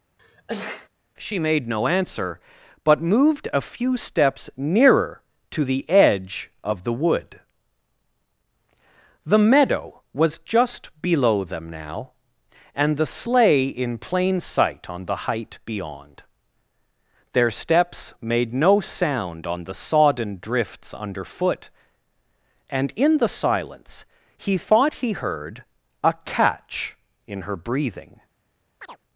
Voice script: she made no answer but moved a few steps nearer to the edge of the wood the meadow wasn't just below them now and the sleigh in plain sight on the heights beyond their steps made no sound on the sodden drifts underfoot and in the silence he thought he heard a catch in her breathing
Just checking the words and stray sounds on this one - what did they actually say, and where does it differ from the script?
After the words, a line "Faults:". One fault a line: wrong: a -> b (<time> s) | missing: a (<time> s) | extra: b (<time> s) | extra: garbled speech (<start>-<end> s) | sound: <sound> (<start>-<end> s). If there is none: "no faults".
she made no answer but moved a few steps nearer to the edge of the wood the meadow was just below them now and the sleigh in plain sight on the height beyond their steps made no sound on the sodden drifts underfoot and in the silence he thought he heard a catch in her breathing
Faults:
sound: sneeze (0.2-0.9 s)
wrong: wasn't -> was (10.1 s)
wrong: heights -> height (15.3 s)
sound: chirp (28.8-29.0 s)